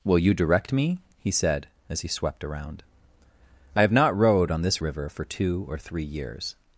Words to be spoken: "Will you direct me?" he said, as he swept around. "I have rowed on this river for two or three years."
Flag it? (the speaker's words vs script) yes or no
yes